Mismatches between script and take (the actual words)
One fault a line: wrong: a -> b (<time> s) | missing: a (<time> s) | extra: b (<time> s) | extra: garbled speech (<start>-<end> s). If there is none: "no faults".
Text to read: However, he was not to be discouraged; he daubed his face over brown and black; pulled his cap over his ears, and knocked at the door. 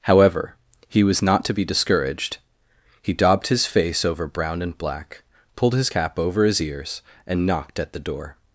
no faults